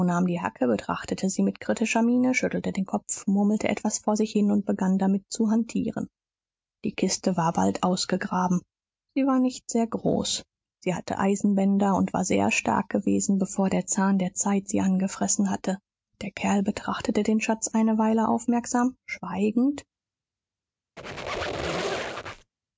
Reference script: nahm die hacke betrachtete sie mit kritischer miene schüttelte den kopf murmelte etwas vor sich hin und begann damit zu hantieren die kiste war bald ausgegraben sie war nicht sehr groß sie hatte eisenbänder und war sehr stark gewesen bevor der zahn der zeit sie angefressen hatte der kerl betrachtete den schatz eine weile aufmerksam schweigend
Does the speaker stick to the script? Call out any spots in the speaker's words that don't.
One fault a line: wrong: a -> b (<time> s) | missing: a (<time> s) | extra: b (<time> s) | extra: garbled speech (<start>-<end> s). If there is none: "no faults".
no faults